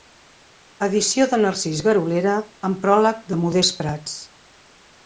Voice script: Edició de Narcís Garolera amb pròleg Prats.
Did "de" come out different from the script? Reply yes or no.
no